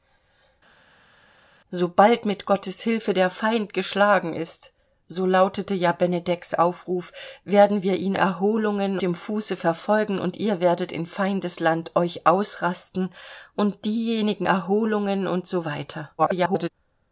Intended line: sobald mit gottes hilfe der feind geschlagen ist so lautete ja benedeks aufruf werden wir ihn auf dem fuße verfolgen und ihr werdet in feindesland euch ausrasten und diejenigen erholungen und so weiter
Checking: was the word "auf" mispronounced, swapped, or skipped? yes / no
yes